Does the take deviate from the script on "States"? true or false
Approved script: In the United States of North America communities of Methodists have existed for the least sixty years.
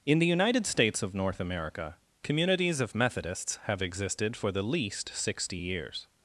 false